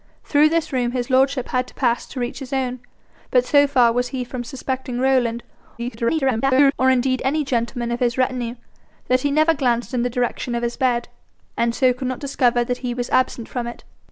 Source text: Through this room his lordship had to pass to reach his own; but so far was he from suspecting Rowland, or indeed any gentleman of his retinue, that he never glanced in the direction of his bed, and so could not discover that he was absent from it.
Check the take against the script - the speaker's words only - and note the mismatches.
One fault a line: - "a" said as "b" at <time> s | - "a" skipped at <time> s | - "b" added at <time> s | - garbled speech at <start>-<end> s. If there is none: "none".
- garbled speech at 5.8-6.7 s